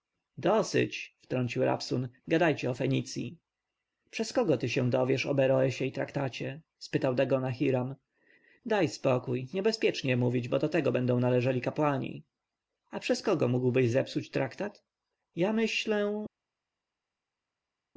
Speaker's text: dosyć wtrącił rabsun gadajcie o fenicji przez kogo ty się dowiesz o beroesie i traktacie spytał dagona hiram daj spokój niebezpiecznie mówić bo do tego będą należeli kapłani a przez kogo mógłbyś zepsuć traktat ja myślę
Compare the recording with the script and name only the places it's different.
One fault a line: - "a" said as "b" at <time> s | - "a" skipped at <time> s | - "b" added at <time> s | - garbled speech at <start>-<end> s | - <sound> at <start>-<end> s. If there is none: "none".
none